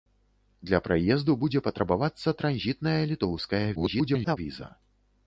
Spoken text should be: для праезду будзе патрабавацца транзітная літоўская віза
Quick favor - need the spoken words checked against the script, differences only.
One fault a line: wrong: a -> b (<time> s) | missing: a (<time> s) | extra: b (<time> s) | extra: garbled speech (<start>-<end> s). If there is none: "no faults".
extra: garbled speech (3.7-4.4 s)